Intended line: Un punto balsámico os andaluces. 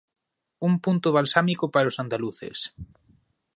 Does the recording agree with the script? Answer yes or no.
no